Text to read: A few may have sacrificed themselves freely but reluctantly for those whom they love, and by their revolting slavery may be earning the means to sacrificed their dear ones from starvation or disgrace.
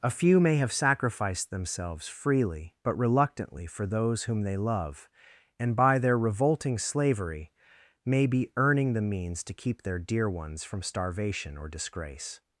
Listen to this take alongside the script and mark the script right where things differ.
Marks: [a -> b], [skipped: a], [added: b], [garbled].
A few may have sacrificed themselves freely but reluctantly for those whom they love, and by their revolting slavery may be earning the means to [sacrificed -> keep] their dear ones from starvation or disgrace.